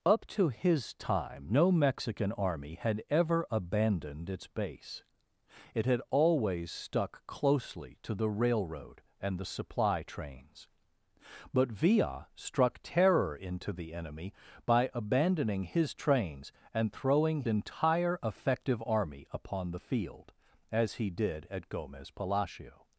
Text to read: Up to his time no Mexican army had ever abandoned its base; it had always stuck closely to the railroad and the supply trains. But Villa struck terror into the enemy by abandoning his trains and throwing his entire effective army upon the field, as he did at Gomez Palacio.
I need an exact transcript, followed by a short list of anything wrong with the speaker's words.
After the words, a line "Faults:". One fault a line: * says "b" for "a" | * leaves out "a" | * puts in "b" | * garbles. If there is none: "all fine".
Up to his time no Mexican army had ever abandoned its base; it had always stuck closely to the railroad and the supply trains. But Villa struck terror into the enemy by abandoning his trains and throwing entire effective army upon the field, as he did at Gomez Palacio.
Faults:
* leaves out "his"